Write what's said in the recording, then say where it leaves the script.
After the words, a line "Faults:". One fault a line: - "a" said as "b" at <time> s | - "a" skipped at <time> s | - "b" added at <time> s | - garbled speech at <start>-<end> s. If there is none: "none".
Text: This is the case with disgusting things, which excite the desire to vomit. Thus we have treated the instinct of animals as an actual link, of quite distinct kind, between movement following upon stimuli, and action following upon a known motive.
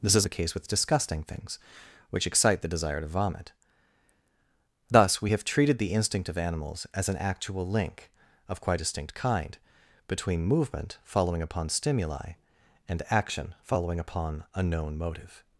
This is the case with disgusting things, which excite the desire to vomit. Thus we have treated the instinct of animals as an actual link, of quite distinct kind, between movement following upon stimuli, and action following upon a known motive.
Faults:
none